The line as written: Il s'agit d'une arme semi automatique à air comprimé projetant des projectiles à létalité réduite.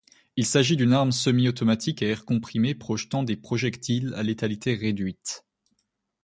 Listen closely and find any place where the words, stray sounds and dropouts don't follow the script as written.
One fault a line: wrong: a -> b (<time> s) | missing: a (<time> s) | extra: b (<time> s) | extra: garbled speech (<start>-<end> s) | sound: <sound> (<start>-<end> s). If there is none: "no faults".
no faults